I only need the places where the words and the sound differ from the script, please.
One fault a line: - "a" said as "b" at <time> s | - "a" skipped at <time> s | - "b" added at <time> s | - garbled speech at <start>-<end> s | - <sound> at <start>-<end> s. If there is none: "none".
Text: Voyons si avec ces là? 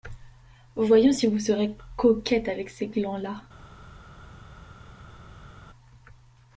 - "vous serez coquette" added at 1.3 s
- "glands" added at 2.9 s